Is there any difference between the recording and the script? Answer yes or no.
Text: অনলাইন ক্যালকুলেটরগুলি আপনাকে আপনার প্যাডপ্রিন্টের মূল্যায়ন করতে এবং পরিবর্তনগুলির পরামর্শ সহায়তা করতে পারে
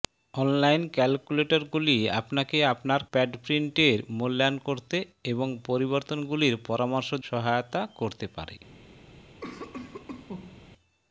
no